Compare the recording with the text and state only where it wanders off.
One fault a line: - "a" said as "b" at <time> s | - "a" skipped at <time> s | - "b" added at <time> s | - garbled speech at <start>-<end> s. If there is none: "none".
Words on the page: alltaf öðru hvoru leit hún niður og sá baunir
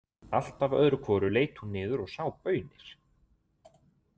none